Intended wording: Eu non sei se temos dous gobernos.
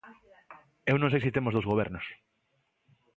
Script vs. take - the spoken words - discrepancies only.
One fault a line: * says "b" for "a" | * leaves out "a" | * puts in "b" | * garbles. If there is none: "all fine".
all fine